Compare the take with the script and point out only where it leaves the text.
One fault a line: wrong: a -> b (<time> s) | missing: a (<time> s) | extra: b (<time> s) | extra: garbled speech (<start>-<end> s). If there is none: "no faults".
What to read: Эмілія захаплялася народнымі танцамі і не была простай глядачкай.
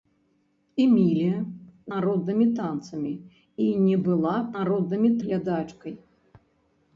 missing: захаплялася (1.4 s)
wrong: простай -> народнымі (4.6 s)